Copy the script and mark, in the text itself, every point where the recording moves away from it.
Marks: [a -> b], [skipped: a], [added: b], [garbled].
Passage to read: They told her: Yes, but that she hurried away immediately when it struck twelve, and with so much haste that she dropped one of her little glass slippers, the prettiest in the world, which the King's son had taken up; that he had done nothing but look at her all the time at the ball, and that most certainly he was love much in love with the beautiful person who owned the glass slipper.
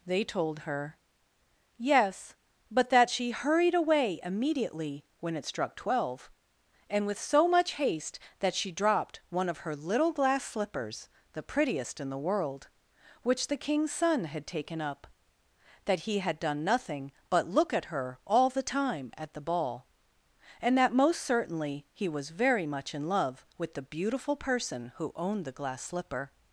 They told her: Yes, but that she hurried away immediately when it struck twelve, and with so much haste that she dropped one of her little glass slippers, the prettiest in the world, which the King's son had taken up; that he had done nothing but look at her all the time at the ball, and that most certainly he was [love -> very] much in love with the beautiful person who owned the glass slipper.